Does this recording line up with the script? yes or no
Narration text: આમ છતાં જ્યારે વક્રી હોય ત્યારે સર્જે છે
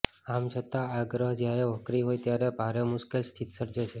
no